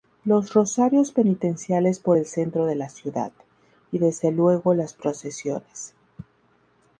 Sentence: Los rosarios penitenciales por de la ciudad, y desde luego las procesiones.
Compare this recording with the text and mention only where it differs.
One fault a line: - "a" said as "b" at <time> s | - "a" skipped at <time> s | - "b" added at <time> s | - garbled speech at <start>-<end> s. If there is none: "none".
- "el centro" added at 2.1 s